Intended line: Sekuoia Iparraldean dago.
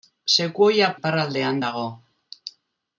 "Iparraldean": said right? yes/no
yes